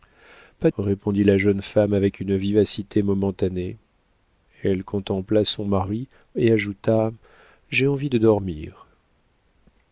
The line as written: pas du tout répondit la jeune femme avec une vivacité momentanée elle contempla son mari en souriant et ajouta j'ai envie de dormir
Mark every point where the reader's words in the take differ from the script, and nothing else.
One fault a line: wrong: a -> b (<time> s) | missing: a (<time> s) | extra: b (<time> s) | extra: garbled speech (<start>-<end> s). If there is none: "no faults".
missing: du tout (0.7 s)
missing: en souriant (6.1 s)